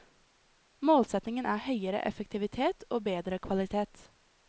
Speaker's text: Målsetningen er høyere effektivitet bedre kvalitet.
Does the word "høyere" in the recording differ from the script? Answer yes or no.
no